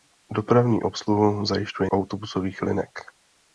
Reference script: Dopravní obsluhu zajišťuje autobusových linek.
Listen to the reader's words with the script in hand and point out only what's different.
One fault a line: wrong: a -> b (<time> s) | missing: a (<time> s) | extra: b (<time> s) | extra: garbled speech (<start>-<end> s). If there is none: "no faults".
no faults